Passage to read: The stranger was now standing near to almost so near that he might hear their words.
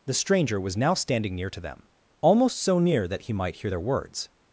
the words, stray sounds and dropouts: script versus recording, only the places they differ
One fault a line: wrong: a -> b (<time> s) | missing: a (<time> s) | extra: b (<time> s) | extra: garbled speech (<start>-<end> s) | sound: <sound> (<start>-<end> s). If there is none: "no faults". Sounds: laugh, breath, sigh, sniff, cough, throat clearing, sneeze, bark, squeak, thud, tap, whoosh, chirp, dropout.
extra: them (1.6 s)